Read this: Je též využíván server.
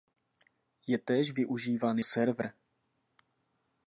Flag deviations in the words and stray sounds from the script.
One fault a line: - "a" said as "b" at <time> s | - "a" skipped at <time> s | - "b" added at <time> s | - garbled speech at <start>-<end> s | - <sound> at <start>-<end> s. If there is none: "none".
none